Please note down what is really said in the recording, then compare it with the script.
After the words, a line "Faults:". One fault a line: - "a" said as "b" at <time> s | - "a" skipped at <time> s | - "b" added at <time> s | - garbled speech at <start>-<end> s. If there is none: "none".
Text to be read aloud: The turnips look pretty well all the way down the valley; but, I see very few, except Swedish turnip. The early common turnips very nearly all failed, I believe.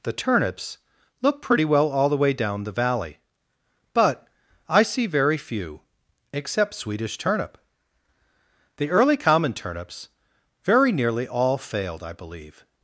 The turnips look pretty well all the way down the valley; but, I see very few, except Swedish turnip. The early common turnips very nearly all failed, I believe.
Faults:
none